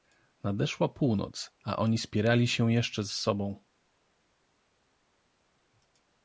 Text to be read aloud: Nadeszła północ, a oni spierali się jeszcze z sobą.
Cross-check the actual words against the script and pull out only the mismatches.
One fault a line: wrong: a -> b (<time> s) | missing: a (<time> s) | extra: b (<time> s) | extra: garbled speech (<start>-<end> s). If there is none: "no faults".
no faults